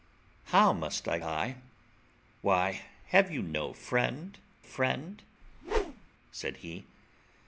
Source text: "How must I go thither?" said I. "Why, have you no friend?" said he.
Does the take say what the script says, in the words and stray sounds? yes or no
no